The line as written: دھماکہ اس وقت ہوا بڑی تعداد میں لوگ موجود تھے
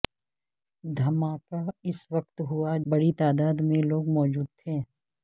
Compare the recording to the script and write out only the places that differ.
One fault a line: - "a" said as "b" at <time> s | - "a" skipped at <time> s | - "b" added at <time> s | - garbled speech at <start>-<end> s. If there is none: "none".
none